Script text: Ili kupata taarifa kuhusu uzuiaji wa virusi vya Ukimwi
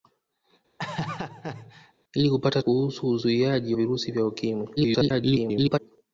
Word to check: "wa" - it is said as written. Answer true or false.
false